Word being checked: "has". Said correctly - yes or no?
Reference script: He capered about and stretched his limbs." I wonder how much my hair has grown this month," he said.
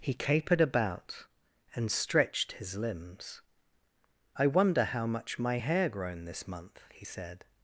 no